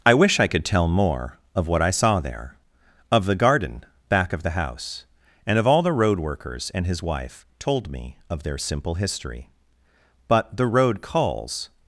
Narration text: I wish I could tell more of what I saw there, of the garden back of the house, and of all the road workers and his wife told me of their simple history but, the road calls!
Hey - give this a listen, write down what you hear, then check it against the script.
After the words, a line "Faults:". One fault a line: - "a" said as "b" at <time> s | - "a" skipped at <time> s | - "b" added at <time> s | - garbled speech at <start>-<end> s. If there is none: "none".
I wish I could tell more of what I saw there, of the garden back of the house, and of all the road workers and his wife told me of their simple history but, the road calls!
Faults:
none